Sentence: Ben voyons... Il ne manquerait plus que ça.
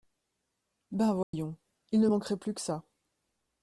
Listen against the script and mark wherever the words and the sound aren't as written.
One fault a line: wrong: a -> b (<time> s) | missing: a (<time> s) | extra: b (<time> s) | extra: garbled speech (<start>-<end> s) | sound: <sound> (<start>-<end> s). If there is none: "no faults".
sound: dropout (1.2-1.3 s)